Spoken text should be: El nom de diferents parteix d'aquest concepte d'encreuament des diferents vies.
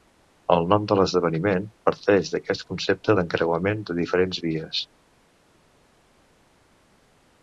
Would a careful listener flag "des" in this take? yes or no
yes